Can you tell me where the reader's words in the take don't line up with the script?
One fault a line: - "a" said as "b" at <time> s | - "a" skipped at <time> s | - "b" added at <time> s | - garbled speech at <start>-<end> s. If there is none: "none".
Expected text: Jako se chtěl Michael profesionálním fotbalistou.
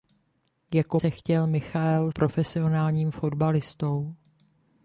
none